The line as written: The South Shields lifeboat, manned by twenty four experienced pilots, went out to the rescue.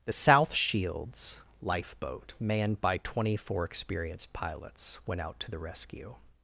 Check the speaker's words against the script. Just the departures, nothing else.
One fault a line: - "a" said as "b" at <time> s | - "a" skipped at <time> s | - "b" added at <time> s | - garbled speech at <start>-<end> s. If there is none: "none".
none